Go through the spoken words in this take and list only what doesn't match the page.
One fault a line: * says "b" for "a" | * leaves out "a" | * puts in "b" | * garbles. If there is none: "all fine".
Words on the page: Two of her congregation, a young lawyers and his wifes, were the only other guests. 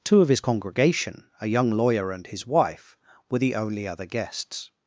* says "his" for "her"
* says "lawyer" for "lawyers"
* says "wife" for "wifes"